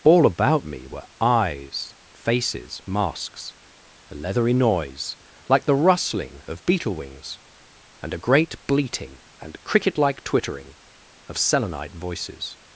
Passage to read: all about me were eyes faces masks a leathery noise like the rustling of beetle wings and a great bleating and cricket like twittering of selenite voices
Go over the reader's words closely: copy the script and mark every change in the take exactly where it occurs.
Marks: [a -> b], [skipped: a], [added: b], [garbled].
all about me were eyes faces masks a leathery noise like the rustling of beetle wings and a great bleating and cricket like twittering of selenite voices